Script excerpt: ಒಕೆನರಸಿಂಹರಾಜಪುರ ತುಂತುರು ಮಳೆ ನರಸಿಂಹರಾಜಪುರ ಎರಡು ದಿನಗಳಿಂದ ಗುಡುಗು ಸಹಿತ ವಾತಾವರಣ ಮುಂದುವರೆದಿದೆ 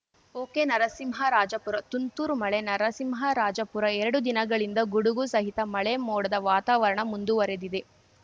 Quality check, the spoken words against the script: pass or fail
fail